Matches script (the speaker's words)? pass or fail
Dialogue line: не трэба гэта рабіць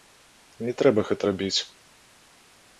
pass